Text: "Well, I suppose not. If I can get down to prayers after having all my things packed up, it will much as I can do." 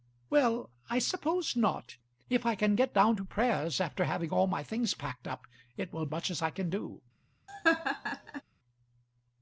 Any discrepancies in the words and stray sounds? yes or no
yes